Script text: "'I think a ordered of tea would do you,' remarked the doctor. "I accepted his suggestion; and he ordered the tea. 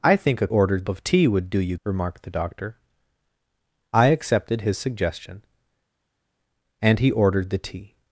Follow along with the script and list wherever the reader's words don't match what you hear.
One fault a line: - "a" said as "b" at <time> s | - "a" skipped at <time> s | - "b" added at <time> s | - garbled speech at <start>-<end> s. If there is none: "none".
none